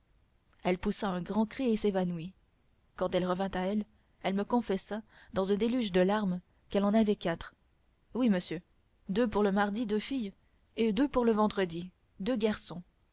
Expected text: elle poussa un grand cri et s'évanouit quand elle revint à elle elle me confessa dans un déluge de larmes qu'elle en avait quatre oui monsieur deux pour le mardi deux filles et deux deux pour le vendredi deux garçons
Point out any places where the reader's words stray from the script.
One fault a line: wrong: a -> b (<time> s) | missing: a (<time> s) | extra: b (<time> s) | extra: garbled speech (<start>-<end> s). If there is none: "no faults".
missing: deux (11.1 s)